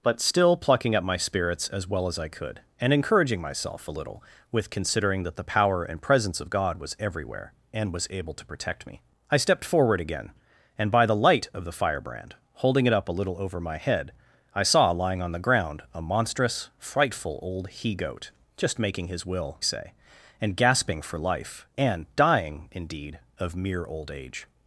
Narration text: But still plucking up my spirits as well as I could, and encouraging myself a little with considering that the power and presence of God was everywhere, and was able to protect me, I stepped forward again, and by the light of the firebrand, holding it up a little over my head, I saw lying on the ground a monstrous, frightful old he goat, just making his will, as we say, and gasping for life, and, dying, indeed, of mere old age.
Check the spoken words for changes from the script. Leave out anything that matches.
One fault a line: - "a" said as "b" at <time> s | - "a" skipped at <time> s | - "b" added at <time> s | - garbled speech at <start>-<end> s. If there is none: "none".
- "as we" skipped at 19.6 s